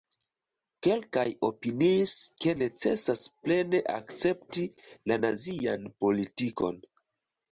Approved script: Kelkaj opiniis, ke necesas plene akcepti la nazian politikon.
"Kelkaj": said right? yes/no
yes